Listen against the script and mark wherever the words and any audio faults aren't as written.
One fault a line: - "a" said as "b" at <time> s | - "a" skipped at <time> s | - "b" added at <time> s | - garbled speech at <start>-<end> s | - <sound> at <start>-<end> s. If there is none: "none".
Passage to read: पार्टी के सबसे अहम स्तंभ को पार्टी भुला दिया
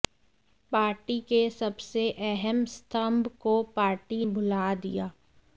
none